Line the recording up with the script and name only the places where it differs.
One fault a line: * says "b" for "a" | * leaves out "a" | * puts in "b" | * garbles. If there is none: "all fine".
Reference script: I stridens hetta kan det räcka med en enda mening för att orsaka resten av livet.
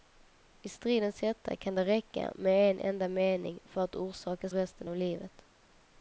all fine